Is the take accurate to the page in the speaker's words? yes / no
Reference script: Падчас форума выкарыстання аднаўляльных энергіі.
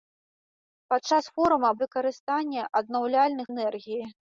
yes